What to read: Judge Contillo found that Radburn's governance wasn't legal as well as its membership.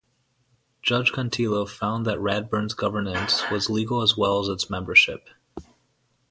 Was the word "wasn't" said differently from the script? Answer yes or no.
yes